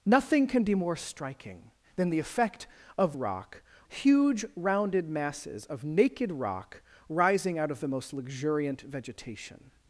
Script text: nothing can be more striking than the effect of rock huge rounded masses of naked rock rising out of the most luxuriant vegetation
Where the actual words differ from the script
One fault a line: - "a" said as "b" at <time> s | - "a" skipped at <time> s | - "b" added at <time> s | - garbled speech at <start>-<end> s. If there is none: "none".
none